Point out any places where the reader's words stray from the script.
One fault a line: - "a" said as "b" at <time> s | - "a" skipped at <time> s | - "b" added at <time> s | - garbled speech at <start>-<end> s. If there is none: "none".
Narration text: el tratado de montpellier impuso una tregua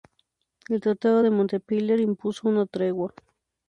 none